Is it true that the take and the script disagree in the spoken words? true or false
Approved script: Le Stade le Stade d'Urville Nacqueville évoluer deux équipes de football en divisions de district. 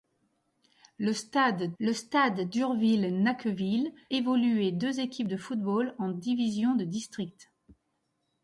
false